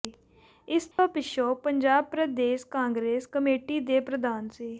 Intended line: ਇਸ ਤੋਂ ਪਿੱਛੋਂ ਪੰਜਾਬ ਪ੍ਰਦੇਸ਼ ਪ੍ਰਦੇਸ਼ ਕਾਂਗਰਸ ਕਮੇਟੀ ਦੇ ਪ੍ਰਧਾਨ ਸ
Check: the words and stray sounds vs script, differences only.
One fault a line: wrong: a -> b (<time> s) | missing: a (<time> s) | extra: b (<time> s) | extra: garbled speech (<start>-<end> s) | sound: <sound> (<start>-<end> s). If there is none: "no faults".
sound: dropout (0.9-1.0 s)
missing: ਪ੍ਰਦੇਸ਼ (2.6 s)